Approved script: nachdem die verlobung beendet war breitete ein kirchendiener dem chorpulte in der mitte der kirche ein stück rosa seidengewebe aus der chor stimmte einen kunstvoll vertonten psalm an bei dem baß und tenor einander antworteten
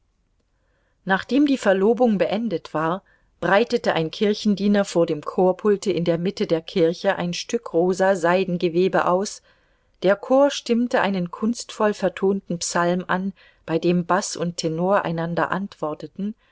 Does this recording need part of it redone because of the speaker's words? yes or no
yes